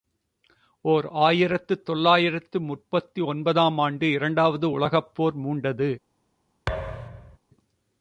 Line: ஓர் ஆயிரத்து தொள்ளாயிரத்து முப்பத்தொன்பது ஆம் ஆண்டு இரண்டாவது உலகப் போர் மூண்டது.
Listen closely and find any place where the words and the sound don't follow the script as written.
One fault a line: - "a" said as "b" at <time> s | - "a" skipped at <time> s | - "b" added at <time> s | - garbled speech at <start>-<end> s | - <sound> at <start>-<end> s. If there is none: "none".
- thud at 6.7-7.4 s